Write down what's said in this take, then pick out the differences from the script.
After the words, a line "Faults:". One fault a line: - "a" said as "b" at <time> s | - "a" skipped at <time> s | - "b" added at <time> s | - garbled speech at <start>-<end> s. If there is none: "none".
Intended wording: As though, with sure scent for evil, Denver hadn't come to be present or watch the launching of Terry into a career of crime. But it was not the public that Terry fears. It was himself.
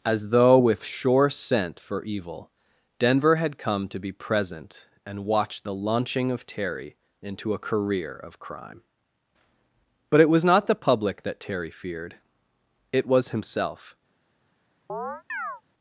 As though, with sure scent for evil, Denver had come to be present and watch the launching of Terry into a career of crime. But it was not the public that Terry feared. It was himself.
Faults:
- "hadn't" said as "had" at 3.3 s
- "or" said as "and" at 5.0 s
- "fears" said as "feared" at 11.7 s